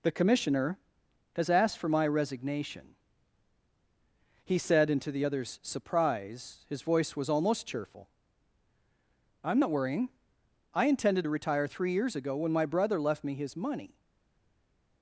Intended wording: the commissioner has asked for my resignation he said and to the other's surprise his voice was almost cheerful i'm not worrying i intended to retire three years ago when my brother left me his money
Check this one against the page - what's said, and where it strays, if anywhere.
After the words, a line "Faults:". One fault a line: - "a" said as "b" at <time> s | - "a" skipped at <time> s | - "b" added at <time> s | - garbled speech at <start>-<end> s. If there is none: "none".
the commissioner has asked for my resignation he said and to the other's surprise his voice was almost cheerful i'm not worrying i intended to retire three years ago when my brother left me his money
Faults:
none